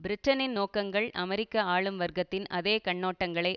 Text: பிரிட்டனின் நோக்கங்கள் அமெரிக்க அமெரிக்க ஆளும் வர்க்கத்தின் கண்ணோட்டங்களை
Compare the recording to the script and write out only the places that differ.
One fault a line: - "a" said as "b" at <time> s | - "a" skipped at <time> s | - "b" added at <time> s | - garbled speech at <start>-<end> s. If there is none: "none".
- "அமெரிக்க" skipped at 1.6 s
- "அதே" added at 2.5 s